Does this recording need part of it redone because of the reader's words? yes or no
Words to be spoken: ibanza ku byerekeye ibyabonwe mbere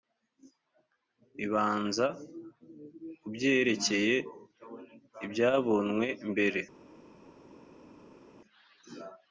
no